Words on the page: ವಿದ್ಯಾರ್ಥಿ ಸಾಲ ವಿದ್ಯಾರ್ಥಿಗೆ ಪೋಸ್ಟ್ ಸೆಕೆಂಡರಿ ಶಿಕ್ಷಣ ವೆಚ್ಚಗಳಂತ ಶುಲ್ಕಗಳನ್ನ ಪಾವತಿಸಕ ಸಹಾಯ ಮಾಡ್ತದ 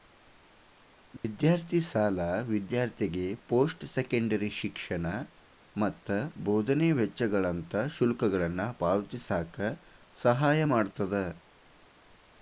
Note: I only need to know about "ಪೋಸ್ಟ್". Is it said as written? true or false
true